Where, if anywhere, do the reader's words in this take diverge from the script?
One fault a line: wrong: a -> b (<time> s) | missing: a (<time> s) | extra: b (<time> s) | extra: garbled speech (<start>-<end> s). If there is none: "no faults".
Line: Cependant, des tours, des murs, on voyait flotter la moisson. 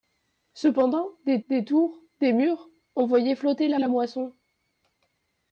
extra: des (1.5 s)
extra: la (3.8 s)